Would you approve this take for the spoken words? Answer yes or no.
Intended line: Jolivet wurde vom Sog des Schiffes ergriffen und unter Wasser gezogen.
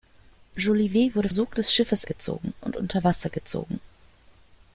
no